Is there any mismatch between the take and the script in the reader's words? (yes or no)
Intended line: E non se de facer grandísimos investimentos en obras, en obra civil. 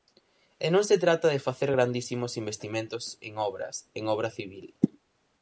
yes